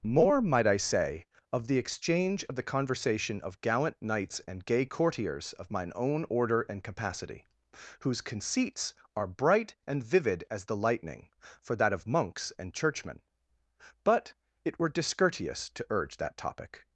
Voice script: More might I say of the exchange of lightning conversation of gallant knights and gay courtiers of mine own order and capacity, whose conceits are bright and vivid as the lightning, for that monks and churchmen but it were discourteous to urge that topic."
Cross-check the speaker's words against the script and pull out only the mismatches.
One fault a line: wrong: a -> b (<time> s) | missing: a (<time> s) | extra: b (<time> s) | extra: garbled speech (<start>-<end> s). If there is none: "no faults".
wrong: lightning -> the (2.5 s)
extra: of (11.9 s)